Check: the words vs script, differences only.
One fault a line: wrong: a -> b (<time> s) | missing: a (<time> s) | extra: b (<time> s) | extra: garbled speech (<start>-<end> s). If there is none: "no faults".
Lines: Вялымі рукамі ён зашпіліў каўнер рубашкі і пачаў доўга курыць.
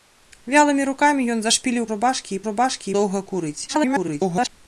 missing: каўнер (1.9 s)
wrong: пачаў -> рубашкі (2.5 s)
extra: garbled speech (3.7-4.5 s)